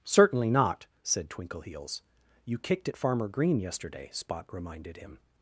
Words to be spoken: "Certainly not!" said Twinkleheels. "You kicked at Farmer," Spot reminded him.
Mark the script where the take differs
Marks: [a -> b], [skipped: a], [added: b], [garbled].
"Certainly not!" said Twinkleheels. "You kicked at Farmer," [added: Green yesterday] Spot reminded him.